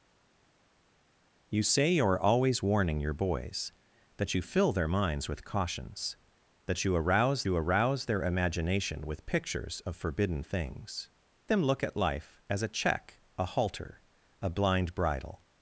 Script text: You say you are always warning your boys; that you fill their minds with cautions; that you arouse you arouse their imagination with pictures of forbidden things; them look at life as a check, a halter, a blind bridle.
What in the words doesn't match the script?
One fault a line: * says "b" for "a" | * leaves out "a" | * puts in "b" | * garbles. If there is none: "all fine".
all fine